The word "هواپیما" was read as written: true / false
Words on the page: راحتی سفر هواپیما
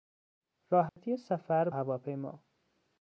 true